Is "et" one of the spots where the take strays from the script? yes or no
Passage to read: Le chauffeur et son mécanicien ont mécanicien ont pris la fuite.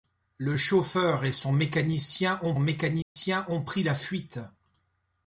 no